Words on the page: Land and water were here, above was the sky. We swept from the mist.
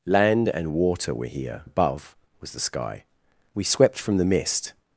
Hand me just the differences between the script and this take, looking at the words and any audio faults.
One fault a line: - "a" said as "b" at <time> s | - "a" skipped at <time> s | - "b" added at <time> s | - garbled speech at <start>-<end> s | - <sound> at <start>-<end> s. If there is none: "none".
none